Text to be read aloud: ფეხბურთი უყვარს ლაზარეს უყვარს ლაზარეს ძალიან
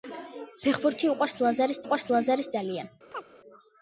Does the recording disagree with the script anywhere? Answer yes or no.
no